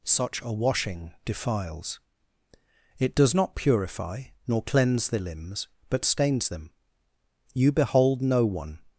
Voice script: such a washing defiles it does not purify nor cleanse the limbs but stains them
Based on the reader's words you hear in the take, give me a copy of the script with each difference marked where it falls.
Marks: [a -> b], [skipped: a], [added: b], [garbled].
such a washing defiles it does not purify nor cleanse the limbs but stains them [added: you behold no one]